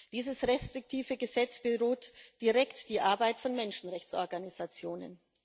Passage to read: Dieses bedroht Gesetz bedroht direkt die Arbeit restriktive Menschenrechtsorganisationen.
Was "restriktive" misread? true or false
true